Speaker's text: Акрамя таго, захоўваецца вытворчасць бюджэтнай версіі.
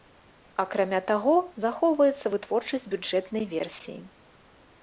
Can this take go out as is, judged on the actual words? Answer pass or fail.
pass